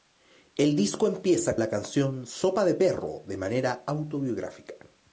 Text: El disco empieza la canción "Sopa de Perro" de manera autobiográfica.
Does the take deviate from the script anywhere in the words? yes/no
no